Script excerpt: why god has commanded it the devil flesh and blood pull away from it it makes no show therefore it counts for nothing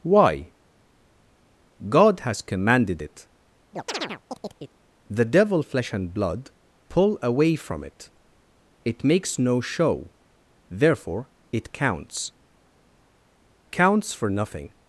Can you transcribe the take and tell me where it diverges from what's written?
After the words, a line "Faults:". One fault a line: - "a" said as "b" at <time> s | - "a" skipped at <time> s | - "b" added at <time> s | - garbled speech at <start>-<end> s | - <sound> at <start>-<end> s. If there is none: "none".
why god has commanded it the devil flesh and blood pull away from it it makes no show therefore it counts counts for nothing
Faults:
- chirp at 3.7-4.8 s
- "counts" added at 13.7 s